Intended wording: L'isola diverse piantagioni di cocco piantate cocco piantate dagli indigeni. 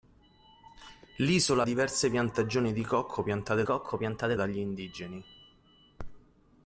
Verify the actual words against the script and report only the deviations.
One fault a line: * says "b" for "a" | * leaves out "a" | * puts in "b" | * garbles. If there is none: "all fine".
all fine